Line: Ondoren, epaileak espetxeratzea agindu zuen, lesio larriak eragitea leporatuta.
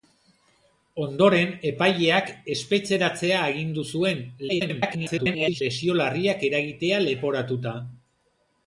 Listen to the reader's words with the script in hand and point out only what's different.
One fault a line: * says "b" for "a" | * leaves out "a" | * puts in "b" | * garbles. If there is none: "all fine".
* garbles